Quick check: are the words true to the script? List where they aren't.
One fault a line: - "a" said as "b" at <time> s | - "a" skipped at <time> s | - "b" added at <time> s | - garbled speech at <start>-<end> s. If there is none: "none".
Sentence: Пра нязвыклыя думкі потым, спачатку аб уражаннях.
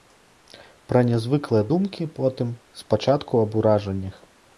none